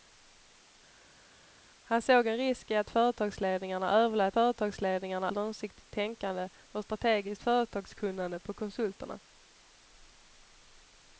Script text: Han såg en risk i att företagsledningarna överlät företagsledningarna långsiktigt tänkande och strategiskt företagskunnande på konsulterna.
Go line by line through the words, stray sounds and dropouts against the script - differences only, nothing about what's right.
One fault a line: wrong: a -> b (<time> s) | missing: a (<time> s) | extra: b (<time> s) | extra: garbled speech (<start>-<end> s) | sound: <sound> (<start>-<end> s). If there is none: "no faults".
no faults